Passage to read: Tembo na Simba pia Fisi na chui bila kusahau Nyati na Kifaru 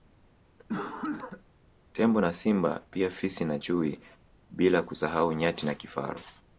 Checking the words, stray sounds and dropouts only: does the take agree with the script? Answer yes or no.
no